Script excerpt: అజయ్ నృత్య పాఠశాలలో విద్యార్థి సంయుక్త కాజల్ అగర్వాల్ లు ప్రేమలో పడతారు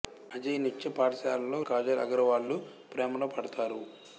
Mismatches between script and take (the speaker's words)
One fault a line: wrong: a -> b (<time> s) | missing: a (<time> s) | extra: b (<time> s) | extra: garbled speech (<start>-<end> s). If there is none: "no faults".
missing: విద్యార్థి సంయుక్త (1.6 s)